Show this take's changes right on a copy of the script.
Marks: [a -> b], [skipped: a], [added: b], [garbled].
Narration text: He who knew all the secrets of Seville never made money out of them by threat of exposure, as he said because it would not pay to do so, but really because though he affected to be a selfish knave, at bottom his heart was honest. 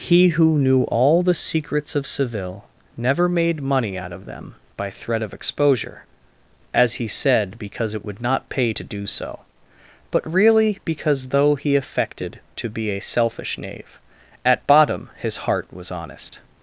He who knew all the secrets of Seville never made money out of them by threat of exposure, as he said because it would not pay to do so, but really because though he affected to be a selfish knave, at bottom his heart was honest.